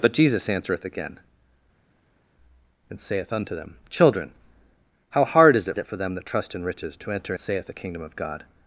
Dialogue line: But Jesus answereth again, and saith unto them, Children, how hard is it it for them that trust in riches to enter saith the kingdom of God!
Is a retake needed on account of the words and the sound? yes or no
no